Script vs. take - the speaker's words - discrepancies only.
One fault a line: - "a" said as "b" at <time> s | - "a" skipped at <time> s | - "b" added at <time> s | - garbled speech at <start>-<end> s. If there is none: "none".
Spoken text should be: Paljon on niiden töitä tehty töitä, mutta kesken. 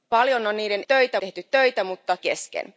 none